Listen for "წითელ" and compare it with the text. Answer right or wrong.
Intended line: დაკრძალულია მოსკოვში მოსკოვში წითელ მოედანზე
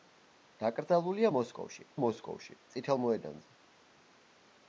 right